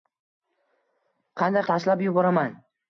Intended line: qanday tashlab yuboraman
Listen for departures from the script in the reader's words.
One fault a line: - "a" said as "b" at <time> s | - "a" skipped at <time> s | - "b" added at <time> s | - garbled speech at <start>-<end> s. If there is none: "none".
none